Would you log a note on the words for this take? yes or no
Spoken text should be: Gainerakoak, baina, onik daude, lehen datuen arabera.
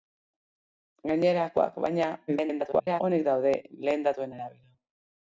yes